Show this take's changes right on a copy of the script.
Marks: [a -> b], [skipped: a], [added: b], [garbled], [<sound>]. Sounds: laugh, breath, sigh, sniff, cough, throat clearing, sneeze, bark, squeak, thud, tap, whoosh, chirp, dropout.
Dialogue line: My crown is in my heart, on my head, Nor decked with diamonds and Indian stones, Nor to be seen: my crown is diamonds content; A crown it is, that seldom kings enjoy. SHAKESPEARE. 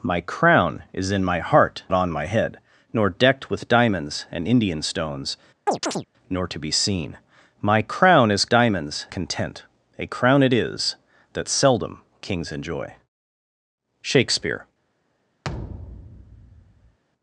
My crown is in my heart, on my head, Nor decked with diamonds and Indian stones, [chirp] Nor to be seen: my crown is diamonds content; A crown it is, that seldom kings enjoy. SHAKESPEARE. [thud]